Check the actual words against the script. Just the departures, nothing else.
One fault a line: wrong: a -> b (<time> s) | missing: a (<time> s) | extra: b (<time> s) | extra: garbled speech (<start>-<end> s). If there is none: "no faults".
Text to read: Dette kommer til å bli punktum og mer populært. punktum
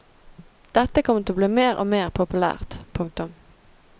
wrong: punktum -> mer (1.6 s)